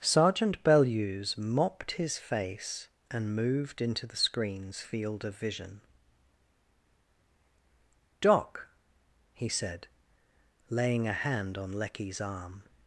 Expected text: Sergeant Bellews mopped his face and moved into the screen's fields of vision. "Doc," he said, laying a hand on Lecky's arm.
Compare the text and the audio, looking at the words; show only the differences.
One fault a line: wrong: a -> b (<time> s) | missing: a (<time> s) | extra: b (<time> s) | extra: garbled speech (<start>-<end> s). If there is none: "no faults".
wrong: fields -> field (4.8 s)